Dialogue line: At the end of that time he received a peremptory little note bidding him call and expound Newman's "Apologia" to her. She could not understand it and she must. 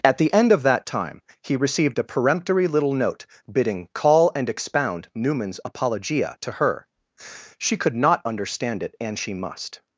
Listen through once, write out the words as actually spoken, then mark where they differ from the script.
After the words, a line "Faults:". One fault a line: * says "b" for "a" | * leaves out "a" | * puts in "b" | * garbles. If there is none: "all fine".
At the end of that time he received a peremptory little note bidding call and expound Newman's "Apologia" to her. She could not understand it and she must.
Faults:
* leaves out "him"